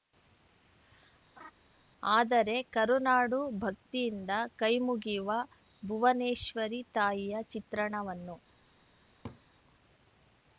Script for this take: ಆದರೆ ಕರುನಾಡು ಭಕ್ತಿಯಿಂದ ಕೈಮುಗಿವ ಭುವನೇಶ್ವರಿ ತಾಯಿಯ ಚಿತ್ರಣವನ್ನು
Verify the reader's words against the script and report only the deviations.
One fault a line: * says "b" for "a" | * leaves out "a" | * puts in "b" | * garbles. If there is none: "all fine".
all fine